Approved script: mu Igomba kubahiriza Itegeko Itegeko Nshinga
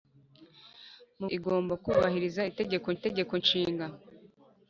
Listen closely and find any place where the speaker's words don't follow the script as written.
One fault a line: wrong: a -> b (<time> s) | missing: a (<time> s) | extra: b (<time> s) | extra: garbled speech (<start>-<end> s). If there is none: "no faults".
no faults